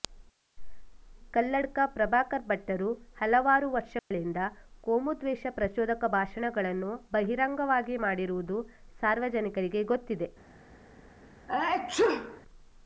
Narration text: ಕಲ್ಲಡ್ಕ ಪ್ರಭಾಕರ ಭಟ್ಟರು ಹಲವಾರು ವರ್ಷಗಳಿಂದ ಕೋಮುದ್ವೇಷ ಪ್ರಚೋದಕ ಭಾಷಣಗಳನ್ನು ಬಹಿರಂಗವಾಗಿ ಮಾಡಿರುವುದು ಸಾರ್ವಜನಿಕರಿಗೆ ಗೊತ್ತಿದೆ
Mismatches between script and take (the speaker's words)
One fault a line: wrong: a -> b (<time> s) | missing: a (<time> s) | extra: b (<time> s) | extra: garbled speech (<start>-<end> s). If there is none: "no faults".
no faults